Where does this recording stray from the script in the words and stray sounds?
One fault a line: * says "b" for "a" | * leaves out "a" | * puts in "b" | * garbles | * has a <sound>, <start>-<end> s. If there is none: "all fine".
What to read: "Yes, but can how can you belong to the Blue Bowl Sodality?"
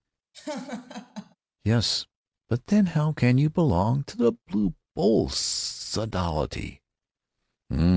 * has a laugh, 0.3-1.4 s
* says "then" for "can"